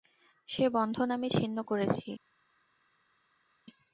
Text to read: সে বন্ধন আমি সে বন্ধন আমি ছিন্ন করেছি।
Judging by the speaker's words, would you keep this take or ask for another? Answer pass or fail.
fail